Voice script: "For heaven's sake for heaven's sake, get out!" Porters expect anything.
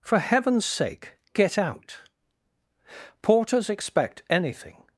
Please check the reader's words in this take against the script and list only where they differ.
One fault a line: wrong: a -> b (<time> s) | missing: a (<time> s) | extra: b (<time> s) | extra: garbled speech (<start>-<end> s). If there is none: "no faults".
missing: for heaven's sake (1.2 s)